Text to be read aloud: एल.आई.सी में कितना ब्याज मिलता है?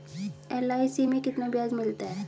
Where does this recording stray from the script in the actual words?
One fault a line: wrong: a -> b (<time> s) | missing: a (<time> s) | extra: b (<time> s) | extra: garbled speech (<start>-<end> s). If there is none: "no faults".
no faults